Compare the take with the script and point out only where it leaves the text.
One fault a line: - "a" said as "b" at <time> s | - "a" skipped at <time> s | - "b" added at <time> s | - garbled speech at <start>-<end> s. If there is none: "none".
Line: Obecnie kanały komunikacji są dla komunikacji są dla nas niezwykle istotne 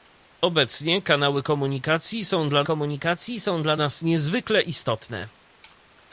none